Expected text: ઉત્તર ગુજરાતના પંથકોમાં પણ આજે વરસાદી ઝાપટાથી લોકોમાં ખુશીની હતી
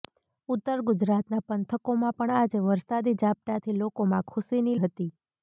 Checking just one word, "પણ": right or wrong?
right